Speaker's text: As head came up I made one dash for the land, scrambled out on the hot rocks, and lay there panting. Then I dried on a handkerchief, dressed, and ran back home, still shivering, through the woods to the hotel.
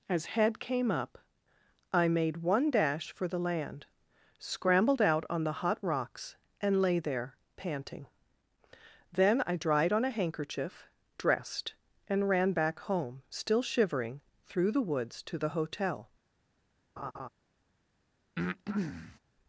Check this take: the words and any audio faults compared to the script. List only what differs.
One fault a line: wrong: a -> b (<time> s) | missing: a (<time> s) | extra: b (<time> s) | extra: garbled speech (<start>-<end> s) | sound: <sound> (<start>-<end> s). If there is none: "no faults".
sound: laugh (17.0-17.3 s)
sound: breath (18.4-19.2 s)